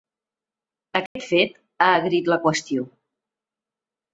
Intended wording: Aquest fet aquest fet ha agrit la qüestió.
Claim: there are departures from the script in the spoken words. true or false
true